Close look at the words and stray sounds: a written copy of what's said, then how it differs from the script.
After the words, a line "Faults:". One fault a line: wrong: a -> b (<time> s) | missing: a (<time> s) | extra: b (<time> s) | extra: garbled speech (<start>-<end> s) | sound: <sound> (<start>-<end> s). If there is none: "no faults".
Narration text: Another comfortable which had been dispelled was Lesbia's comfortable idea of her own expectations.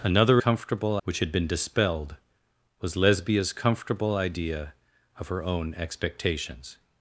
Another comfortable which had been dispelled was Lesbia's comfortable idea of her own expectations.
Faults:
no faults